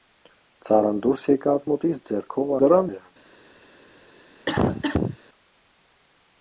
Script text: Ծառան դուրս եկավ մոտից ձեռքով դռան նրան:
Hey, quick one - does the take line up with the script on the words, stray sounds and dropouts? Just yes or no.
no